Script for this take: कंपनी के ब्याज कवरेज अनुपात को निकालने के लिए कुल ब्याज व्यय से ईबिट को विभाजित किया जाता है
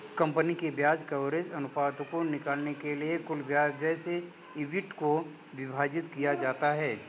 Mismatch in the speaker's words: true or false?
false